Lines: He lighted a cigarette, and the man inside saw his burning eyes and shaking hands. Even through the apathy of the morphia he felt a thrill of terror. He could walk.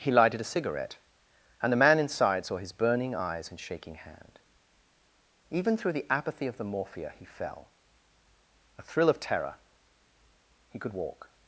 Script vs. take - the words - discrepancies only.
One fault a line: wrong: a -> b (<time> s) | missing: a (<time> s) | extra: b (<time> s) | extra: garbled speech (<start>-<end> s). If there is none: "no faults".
wrong: hands -> hand (3.9 s)
wrong: felt -> fell (7.2 s)